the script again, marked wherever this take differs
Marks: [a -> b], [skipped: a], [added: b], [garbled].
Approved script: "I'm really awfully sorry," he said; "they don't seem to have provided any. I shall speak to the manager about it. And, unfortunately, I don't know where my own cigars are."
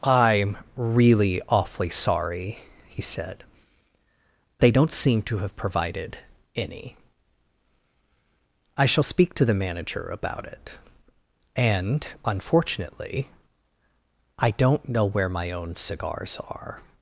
"I'm really awfully sorry," he said; "they don't seem to have provided any. I shall speak to the manager about it. And, unfortunately, I don't know where my own cigars are."